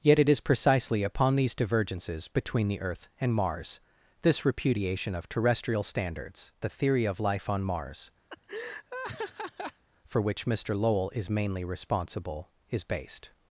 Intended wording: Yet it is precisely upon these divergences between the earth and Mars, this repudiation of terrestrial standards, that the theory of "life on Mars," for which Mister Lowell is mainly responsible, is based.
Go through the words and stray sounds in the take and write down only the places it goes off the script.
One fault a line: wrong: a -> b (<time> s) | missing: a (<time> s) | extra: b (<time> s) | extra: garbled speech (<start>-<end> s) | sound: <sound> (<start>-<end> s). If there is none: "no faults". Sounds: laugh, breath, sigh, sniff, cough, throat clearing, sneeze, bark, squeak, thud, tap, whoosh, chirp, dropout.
missing: that (6.5 s)
sound: laugh (8.3-9.8 s)